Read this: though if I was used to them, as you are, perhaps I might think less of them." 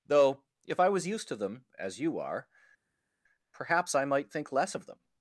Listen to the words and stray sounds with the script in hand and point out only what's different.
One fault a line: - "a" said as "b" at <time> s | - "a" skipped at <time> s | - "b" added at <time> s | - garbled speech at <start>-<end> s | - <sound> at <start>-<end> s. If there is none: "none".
none